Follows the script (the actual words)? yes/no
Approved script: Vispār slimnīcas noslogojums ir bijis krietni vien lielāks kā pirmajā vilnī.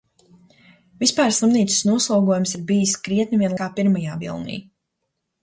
no